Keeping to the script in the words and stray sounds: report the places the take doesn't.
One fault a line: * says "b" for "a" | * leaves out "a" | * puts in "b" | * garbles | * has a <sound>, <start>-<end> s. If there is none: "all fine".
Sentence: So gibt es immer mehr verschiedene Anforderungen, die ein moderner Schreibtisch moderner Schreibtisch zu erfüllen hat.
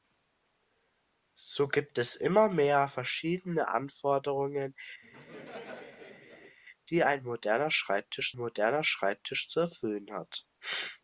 * has a laugh, 5.0-6.6 s